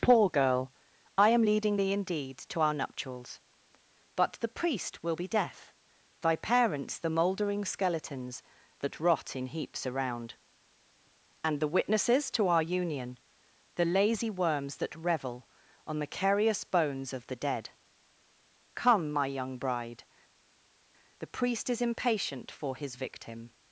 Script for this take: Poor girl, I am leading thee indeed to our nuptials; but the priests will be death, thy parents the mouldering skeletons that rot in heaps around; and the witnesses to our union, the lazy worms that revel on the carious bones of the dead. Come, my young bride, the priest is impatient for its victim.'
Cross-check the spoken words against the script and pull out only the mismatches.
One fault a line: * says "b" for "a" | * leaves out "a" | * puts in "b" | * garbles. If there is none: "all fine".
* says "priest" for "priests"
* says "his" for "its"